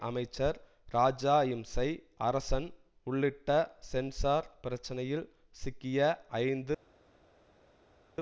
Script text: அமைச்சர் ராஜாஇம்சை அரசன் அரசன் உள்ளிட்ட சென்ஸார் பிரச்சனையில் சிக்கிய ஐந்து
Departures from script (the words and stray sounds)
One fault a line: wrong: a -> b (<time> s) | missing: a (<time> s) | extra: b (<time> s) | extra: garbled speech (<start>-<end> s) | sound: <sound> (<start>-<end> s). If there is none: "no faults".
missing: அரசன் (2.7 s)